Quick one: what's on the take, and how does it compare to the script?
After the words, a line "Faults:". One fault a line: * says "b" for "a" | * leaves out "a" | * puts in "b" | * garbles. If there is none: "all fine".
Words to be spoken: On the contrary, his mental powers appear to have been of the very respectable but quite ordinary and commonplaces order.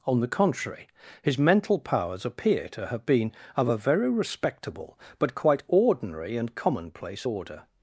On the contrary, his mental powers appear to have been of a very respectable but quite ordinary and commonplace order.
Faults:
* says "a" for "the"
* says "commonplace" for "commonplaces"